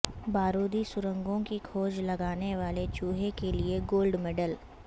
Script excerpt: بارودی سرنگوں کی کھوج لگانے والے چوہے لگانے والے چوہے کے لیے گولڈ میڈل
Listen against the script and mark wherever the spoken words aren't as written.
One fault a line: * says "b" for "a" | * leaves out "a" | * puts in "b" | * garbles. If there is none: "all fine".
* leaves out "لگانے والے چوہے"